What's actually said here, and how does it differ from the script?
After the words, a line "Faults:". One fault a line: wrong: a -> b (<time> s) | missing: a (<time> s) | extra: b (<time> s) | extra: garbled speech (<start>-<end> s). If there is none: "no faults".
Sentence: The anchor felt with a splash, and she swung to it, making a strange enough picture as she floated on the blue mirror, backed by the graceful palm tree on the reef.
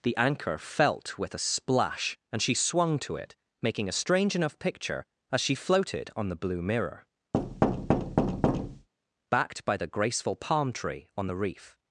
The anchor felt with a splash, and she swung to it, making a strange enough picture as she floated on the blue mirror, backed by the graceful palm tree on the reef.
Faults:
no faults